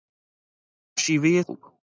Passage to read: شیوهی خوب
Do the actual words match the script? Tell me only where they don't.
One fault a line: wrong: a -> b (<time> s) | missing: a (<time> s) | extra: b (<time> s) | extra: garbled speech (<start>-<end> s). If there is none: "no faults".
no faults